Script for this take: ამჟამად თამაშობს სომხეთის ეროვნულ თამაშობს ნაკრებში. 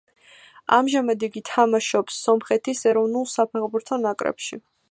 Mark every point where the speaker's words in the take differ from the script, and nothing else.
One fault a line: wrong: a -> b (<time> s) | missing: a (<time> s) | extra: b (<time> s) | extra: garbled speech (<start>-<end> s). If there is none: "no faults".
extra: იგი (1.3 s)
wrong: თამაშობს -> საფეხბურთო (3.4 s)